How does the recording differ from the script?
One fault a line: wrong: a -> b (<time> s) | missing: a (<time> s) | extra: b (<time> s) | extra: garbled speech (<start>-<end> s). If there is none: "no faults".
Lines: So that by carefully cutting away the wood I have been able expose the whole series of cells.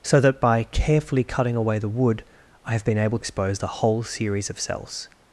no faults